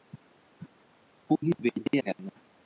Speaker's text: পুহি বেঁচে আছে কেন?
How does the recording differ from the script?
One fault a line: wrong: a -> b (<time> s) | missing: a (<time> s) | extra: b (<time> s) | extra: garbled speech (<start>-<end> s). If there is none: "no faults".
missing: আছে (1.9 s)